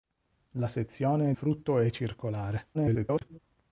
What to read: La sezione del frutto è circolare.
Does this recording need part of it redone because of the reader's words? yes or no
yes